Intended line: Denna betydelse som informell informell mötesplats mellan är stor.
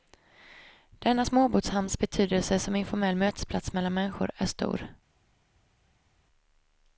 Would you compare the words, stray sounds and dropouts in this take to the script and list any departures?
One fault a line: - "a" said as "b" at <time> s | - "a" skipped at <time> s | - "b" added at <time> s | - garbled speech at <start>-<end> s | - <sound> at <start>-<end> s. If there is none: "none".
- "småbåtshamns" added at 1.2 s
- "informell" skipped at 3.1 s
- "människor" added at 3.9 s